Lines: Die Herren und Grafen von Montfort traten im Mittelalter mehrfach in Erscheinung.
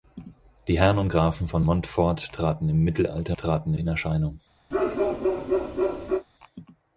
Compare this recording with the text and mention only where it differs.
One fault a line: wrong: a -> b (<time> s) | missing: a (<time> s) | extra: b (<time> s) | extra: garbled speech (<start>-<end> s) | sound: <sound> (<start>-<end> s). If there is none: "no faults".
wrong: mehrfach -> traten (3.4 s)
sound: bark (4.7-6.3 s)